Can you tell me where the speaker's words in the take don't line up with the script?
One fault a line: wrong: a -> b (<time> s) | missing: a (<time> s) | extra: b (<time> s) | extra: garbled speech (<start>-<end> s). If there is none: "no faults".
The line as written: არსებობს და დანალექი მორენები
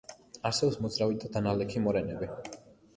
extra: მოძრავი (0.8 s)